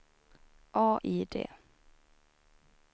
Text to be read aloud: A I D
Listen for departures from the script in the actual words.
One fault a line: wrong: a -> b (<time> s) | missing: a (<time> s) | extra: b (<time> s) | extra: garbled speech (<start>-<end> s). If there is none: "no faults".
no faults